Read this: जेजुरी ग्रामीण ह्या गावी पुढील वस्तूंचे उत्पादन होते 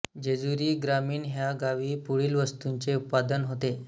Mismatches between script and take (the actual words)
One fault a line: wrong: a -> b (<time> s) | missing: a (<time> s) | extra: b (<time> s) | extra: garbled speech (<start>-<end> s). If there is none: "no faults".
no faults